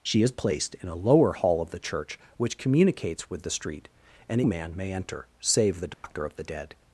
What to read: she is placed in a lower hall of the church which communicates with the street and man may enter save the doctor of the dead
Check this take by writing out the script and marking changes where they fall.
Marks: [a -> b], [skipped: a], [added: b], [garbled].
she is placed in a lower hall of the church which communicates with the street and man may enter save the doctor of the dead